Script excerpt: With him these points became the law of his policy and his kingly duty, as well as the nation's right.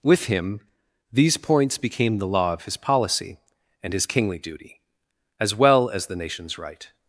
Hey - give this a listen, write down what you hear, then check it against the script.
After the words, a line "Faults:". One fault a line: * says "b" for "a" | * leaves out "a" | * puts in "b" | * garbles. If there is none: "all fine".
With him these points became the law of his policy and his kingly duty, as well as the nation's right.
Faults:
all fine